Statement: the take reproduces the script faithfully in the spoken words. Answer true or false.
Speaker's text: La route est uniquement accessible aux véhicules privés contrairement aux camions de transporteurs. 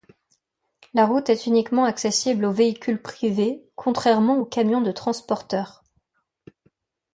true